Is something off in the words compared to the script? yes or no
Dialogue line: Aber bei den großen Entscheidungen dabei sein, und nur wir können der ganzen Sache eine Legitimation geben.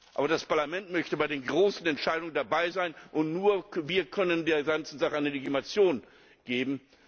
yes